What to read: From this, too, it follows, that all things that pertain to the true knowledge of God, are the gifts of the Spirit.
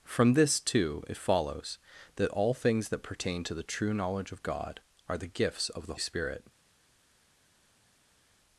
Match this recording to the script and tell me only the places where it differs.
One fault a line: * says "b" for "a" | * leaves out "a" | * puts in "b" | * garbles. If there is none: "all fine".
all fine